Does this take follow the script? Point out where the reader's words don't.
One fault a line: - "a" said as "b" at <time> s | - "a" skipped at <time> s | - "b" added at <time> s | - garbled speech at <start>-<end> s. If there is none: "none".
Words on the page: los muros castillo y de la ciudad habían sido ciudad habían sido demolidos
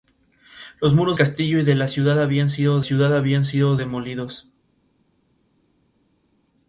none